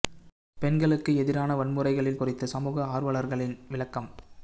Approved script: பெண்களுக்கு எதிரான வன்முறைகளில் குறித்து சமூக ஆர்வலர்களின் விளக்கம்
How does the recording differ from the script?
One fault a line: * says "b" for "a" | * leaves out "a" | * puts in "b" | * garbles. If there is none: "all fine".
all fine